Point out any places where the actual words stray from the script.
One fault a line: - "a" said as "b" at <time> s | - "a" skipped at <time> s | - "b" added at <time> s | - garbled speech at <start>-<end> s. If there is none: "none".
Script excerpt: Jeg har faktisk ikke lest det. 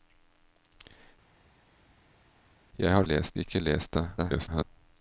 - "faktisk" said as "lest" at 3.0 s
- garbled speech at 4.2-4.6 s